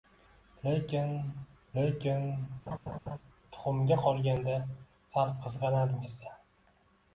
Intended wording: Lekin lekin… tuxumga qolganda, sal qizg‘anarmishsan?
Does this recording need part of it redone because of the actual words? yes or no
no